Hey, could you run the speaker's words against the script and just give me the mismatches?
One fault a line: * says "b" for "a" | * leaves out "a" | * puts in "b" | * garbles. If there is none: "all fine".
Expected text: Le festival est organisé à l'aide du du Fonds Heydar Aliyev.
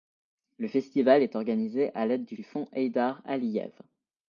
all fine